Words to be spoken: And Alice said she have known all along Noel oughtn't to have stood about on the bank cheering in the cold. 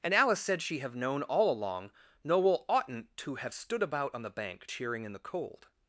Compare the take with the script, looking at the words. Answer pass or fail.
pass